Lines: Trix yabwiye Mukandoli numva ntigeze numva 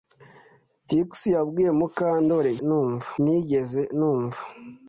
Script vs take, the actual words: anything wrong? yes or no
no